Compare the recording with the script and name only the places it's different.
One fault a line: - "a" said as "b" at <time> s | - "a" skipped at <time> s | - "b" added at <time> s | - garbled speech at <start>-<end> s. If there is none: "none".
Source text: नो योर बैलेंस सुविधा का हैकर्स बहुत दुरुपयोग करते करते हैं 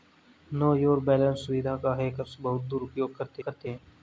none